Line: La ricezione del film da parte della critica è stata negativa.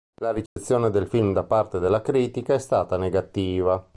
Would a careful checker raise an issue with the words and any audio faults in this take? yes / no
yes